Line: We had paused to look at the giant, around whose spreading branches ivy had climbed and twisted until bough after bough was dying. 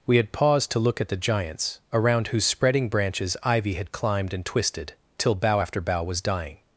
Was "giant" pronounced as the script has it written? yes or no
no